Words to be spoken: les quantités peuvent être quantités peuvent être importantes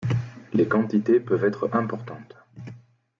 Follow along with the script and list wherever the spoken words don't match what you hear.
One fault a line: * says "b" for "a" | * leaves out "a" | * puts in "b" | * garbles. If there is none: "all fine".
* leaves out "quantités peuvent être"